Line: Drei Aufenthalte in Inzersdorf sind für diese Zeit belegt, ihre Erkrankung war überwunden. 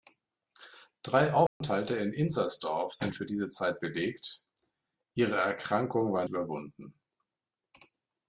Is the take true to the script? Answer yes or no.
yes